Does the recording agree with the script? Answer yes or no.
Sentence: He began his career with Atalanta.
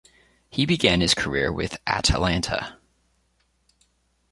yes